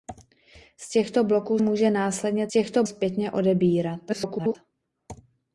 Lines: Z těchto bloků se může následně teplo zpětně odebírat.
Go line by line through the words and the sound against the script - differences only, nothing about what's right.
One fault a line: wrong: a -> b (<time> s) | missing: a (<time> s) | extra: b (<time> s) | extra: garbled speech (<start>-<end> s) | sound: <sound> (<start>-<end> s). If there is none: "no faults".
missing: se (1.6 s)
wrong: teplo -> těchto (2.5 s)
extra: garbled speech (4.1-4.6 s)